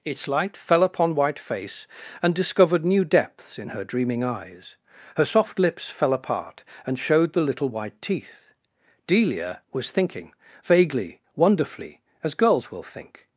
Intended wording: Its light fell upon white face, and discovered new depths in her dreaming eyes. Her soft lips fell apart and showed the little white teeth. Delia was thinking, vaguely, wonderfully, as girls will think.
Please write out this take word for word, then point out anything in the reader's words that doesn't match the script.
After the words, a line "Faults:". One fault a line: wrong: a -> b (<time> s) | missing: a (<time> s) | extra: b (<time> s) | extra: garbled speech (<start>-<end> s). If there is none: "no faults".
Its light fell upon white face, and discovered new depths in her dreaming eyes. Her soft lips fell apart and showed the little white teeth. Delia was thinking, vaguely, wonderfully, as girls will think.
Faults:
no faults